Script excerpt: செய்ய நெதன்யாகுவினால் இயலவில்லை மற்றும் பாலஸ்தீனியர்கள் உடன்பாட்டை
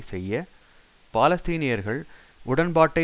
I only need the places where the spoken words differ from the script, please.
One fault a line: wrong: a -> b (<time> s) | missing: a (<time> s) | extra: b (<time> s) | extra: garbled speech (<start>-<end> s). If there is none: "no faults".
missing: நெதன்யாகுவினால் இயலவில்லை மற்றும் (0.5 s)